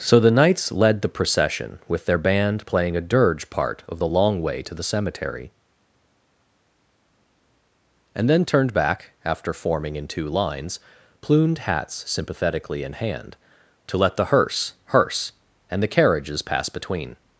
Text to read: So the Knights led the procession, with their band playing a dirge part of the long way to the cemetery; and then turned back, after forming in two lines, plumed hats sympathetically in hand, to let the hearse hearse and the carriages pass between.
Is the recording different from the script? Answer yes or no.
no